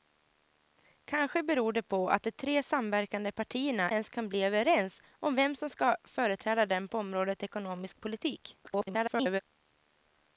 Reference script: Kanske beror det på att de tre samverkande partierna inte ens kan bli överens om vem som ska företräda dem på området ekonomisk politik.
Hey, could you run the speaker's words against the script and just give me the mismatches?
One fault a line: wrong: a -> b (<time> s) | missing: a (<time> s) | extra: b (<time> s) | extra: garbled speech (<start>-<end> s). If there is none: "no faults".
missing: inte (3.9 s)
extra: garbled speech (8.6-9.4 s)